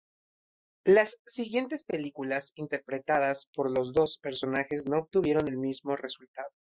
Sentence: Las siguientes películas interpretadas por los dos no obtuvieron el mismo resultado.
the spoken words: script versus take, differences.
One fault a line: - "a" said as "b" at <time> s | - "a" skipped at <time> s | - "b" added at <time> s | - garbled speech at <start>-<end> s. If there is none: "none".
- "personajes" added at 4.2 s